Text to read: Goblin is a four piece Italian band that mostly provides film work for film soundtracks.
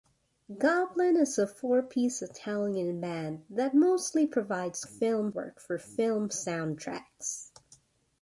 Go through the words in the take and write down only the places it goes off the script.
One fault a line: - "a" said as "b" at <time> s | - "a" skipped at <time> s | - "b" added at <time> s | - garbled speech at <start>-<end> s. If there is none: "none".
none